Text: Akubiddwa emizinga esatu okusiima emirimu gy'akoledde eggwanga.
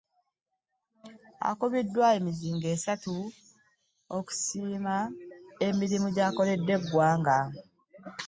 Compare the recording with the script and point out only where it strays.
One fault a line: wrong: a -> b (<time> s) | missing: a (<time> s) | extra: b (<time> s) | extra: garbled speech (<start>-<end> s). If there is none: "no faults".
no faults